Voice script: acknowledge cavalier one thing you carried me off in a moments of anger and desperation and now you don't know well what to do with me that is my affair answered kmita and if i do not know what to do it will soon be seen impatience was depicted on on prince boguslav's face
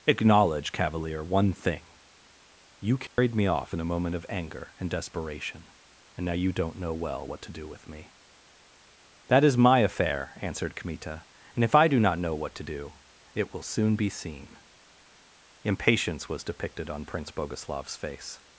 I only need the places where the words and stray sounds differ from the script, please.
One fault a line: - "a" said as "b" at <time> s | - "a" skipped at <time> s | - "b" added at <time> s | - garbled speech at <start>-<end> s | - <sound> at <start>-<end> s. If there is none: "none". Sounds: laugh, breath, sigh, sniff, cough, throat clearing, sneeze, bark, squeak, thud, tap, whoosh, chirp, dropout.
- dropout at 3.1-3.2 s
- "moments" said as "moment" at 3.9 s
- "on" skipped at 17.0 s